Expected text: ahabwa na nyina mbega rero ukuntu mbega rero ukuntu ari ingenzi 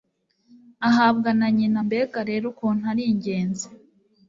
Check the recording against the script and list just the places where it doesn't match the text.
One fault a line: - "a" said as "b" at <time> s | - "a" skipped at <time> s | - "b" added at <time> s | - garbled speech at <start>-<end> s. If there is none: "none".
- "mbega rero ukuntu" skipped at 2.8 s